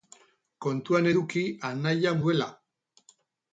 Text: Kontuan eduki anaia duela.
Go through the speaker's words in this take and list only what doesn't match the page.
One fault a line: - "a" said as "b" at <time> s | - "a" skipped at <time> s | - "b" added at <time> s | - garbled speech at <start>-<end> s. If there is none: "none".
none